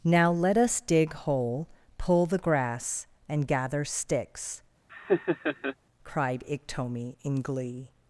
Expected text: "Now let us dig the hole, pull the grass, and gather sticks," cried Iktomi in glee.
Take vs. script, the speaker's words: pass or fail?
fail